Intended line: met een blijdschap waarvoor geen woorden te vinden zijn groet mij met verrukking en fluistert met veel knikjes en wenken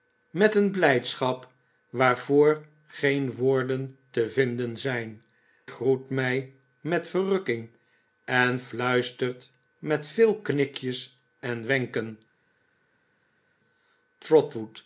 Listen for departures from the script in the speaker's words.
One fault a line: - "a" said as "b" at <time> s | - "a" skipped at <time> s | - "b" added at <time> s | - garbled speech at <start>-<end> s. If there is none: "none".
none